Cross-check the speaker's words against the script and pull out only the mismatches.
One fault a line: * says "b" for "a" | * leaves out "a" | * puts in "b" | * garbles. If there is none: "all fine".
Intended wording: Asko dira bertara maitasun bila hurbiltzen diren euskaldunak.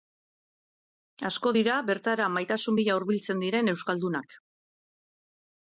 all fine